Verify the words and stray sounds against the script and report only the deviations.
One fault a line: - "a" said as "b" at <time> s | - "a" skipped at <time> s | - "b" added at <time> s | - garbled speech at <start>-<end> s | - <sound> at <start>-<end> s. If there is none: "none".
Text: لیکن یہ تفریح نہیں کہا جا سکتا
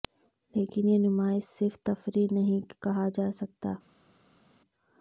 - "نمائش صرف" added at 1.0 s